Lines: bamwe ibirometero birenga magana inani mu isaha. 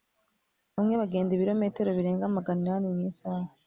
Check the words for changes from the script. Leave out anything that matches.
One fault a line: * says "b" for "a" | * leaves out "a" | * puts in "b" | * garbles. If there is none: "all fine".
* puts in "bagenda"